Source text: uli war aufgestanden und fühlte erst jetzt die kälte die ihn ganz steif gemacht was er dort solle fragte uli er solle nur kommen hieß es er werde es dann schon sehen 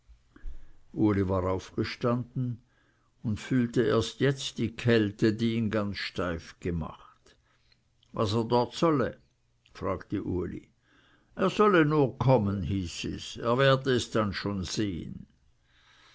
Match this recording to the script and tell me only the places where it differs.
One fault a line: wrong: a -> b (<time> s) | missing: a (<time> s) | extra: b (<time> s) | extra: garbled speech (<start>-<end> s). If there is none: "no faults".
no faults